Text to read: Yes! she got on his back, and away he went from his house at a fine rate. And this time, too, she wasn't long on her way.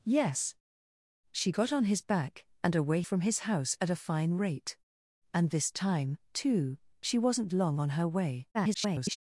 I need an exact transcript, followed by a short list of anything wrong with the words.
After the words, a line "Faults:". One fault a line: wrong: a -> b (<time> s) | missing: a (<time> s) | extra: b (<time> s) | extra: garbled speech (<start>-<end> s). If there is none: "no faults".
Yes! she got on his back, and away from his house at a fine rate. And this time, too, she wasn't long on her way. [garbled]
Faults:
missing: he went (3.0 s)
extra: garbled speech (8.5-9.2 s)